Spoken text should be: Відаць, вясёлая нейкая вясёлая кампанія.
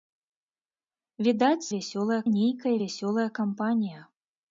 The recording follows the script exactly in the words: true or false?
true